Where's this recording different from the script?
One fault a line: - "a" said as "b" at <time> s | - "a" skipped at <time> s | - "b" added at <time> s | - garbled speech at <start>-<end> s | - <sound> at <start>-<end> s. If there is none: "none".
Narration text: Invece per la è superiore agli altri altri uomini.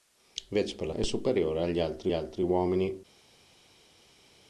none